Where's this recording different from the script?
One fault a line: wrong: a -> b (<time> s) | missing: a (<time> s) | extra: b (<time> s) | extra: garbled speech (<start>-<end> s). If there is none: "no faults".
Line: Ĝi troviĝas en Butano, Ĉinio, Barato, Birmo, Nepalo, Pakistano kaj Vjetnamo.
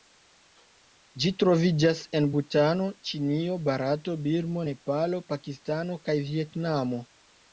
no faults